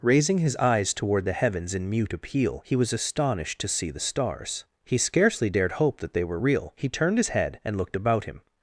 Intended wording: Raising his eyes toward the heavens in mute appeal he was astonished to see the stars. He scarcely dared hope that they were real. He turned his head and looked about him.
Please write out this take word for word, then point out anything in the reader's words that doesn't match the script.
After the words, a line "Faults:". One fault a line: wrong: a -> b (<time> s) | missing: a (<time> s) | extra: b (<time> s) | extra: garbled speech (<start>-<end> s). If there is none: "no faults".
Raising his eyes toward the heavens in mute appeal he was astonished to see the stars. He scarcely dared hope that they were real. He turned his head and looked about him.
Faults:
no faults